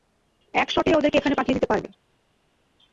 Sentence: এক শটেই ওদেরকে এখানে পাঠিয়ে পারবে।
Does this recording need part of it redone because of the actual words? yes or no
yes